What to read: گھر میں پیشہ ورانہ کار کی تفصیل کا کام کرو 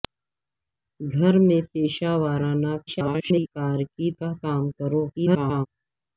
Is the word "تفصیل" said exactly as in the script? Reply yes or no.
no